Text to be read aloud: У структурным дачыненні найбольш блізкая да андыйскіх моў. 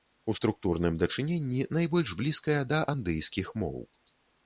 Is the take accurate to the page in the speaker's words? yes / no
yes